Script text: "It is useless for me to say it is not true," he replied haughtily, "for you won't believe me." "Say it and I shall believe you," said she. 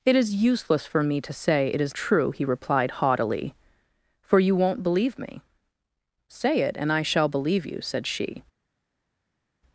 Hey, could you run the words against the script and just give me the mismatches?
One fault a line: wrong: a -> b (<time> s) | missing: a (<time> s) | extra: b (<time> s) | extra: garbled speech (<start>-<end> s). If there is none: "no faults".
missing: not (1.9 s)